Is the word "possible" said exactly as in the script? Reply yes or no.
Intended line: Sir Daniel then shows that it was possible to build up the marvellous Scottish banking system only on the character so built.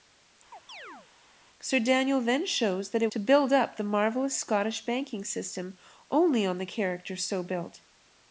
no